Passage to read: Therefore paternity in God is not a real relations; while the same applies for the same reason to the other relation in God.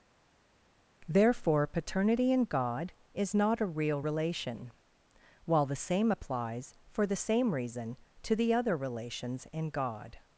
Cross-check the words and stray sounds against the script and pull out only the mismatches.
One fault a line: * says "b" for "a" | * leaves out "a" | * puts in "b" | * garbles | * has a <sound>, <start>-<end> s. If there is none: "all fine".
* says "relation" for "relations"
* says "relations" for "relation"